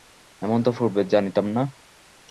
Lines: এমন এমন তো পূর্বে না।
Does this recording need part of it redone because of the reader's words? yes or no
yes